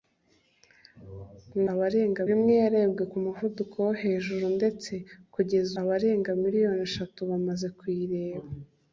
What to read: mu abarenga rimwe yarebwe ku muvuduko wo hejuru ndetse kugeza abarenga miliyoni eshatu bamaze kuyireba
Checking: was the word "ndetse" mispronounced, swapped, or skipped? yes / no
no